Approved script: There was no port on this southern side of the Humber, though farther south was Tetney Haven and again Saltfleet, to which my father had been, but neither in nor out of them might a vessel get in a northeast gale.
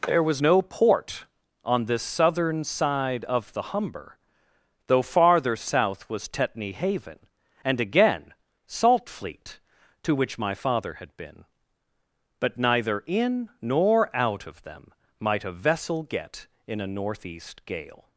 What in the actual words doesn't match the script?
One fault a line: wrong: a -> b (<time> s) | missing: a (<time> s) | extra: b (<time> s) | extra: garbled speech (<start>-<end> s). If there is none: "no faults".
no faults